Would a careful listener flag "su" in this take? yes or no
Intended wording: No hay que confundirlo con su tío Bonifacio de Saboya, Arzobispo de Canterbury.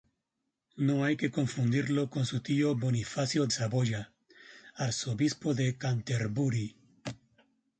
no